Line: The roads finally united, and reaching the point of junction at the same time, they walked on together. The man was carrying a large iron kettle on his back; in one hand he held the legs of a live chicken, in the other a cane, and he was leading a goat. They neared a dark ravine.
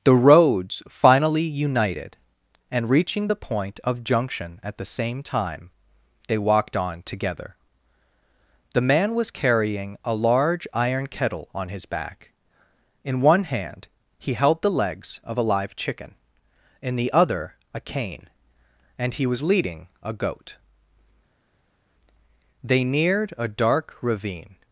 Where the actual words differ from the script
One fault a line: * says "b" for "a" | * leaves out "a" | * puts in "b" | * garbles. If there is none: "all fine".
all fine